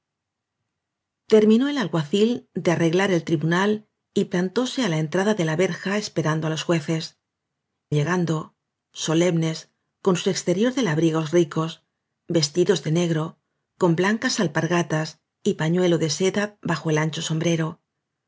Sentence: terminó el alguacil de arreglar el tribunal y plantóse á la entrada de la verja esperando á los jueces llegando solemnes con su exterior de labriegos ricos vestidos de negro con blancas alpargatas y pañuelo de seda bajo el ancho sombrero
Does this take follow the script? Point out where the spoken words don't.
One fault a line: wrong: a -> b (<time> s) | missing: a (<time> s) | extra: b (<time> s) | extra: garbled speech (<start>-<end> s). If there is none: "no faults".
no faults